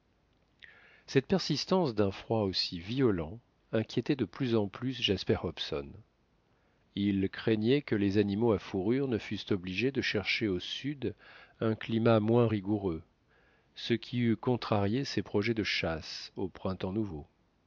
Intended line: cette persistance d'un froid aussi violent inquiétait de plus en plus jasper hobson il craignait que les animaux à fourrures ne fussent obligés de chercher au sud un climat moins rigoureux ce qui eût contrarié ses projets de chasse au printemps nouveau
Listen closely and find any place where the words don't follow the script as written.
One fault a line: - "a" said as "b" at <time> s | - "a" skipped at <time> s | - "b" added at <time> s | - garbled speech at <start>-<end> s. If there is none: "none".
none